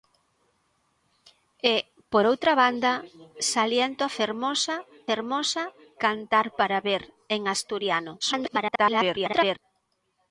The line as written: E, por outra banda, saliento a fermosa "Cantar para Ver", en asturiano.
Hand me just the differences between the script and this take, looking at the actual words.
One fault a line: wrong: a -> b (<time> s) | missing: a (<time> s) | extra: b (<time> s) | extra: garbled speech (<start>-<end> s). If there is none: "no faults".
extra: fermosa (5.1 s)
extra: garbled speech (8.2-9.6 s)